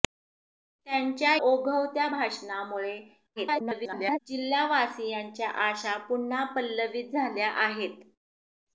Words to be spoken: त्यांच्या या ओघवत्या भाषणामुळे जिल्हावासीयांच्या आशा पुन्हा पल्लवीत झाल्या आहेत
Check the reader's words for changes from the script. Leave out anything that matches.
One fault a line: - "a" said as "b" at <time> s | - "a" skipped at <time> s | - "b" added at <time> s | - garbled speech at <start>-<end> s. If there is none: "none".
- "या" skipped at 1.4 s
- garbled speech at 3.4-4.2 s